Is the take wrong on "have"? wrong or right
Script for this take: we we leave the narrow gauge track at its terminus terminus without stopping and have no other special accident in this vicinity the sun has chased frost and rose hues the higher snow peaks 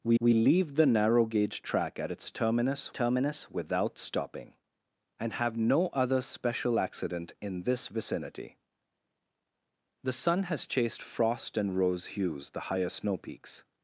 right